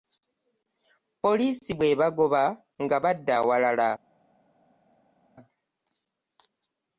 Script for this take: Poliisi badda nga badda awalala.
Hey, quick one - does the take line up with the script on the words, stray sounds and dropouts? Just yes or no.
no